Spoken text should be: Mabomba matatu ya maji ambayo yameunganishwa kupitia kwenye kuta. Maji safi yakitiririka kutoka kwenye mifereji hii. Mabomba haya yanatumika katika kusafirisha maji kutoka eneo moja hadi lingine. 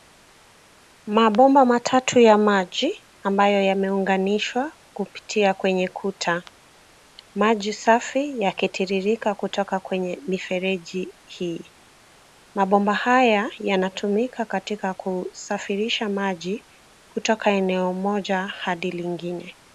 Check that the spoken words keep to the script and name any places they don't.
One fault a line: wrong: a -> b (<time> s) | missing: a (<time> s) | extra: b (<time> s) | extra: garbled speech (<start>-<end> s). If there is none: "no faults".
no faults